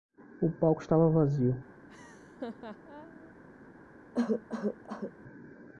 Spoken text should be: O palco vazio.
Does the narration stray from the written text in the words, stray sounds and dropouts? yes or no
yes